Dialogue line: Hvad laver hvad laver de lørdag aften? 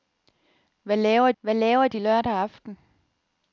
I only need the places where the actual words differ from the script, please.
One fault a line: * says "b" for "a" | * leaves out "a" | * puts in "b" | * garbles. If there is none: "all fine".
all fine